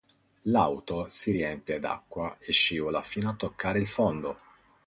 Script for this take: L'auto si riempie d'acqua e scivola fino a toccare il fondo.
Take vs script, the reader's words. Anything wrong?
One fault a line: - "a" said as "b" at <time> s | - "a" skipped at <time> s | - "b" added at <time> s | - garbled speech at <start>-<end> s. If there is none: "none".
none